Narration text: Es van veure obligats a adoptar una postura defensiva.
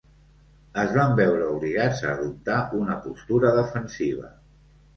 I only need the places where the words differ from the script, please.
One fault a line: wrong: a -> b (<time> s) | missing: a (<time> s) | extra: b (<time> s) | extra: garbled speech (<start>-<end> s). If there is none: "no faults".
no faults